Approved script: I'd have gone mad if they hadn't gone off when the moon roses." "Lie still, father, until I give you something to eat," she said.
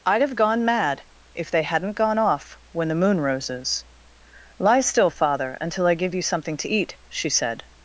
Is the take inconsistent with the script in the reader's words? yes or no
no